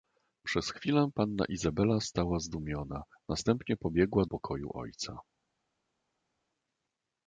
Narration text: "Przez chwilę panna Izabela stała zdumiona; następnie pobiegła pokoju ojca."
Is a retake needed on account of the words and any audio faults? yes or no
no